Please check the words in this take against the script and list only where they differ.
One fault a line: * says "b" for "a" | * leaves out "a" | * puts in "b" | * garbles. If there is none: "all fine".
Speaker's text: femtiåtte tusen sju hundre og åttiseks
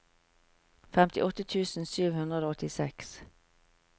all fine